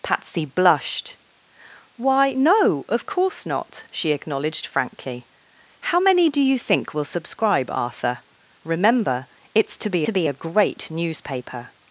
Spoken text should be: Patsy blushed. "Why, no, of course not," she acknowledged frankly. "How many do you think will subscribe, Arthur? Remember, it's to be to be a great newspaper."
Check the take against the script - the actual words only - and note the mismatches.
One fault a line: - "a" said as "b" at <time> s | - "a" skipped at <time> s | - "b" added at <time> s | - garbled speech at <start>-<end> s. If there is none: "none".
none